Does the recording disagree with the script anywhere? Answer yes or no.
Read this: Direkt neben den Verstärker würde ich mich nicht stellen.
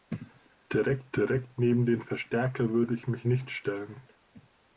yes